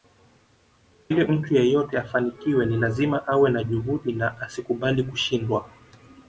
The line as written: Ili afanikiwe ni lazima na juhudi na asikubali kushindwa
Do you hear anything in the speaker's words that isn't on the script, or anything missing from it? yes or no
yes